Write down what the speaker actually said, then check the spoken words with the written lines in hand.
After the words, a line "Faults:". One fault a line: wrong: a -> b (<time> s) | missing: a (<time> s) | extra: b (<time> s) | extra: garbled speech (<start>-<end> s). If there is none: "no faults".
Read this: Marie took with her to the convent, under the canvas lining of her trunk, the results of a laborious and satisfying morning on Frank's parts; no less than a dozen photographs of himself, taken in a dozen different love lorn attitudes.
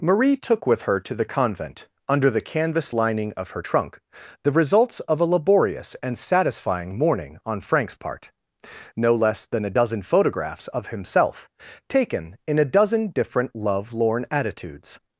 Marie took with her to the convent, under the canvas lining of her trunk, the results of a laborious and satisfying morning on Frank's part; no less than a dozen photographs of himself, taken in a dozen different love lorn attitudes.
Faults:
wrong: parts -> part (8.0 s)